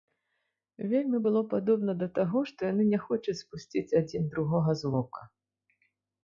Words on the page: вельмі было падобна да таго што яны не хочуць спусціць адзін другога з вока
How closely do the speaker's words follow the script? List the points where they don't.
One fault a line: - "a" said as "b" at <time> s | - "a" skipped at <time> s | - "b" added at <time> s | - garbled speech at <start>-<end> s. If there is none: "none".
none